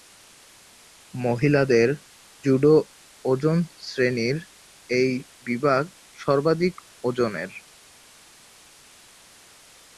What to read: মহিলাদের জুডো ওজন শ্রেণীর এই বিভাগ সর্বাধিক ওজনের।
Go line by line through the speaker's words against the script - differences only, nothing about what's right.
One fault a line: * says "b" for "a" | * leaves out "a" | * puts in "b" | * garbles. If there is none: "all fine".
all fine